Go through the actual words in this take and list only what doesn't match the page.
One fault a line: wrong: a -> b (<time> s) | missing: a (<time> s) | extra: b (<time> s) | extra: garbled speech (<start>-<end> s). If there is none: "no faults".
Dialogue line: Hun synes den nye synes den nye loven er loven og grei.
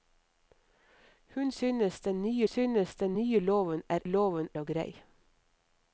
no faults